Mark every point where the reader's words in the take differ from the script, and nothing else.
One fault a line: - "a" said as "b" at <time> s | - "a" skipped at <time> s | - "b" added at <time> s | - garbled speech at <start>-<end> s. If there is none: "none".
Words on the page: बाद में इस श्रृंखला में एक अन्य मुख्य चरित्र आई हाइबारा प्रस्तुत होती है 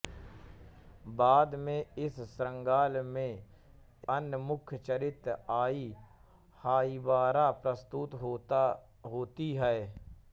- "एक" skipped at 3.5 s